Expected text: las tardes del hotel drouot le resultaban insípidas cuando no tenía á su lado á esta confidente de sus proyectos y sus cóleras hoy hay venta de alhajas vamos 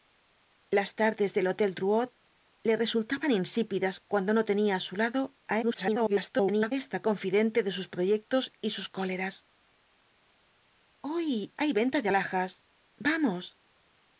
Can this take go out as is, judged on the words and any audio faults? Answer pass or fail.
fail